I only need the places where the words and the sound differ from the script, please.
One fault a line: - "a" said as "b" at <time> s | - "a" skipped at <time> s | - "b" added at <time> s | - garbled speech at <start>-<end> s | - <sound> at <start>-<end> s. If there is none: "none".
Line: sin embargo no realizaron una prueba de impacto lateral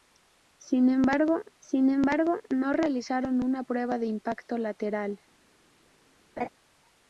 - "sin embargo" added at 1.6 s
- laugh at 6.4-6.5 s